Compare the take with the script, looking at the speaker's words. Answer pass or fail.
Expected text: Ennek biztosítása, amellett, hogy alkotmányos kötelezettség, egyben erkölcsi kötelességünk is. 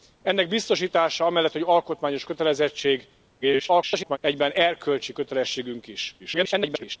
fail